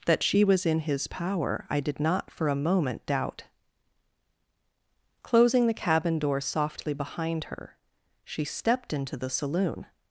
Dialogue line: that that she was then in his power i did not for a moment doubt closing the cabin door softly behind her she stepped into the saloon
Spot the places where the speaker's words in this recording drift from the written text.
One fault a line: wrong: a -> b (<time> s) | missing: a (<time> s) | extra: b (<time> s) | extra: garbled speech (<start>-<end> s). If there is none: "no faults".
missing: that (0.2 s)
missing: then (0.7 s)